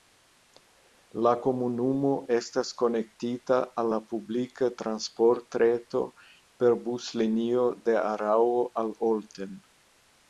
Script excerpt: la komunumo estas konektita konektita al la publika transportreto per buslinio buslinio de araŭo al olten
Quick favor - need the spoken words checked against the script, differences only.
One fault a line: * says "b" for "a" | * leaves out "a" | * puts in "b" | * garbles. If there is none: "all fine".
* leaves out "konektita"
* leaves out "buslinio"